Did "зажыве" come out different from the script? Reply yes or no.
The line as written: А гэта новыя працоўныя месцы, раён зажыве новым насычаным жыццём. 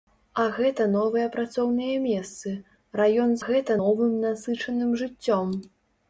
yes